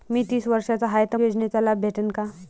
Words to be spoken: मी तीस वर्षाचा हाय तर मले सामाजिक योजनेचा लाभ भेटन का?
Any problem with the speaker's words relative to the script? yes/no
yes